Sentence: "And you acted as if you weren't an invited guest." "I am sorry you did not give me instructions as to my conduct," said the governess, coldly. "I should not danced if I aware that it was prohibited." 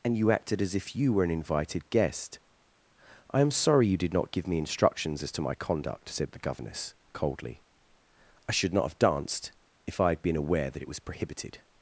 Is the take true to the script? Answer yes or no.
no